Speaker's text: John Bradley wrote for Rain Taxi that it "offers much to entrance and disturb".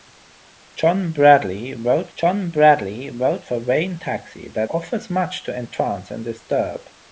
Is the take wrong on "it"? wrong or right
wrong